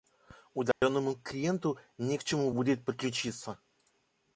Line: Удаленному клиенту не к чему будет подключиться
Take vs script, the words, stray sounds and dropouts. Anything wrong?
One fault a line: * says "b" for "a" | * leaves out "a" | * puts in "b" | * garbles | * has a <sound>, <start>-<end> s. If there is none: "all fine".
* has a dropout, 0.7-0.8 s